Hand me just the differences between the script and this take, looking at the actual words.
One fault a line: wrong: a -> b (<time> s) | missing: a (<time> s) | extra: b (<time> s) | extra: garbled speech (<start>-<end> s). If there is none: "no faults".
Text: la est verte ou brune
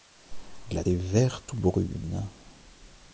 no faults